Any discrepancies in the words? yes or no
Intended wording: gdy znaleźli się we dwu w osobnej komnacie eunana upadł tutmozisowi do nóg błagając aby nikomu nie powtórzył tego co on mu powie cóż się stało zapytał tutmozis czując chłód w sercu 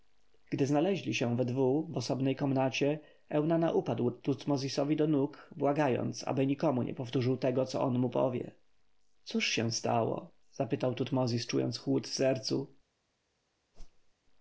no